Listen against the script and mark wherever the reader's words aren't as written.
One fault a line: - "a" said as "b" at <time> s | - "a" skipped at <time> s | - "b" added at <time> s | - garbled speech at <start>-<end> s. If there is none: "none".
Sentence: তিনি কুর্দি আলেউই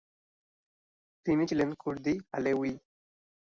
- "ছিলেন" added at 1.5 s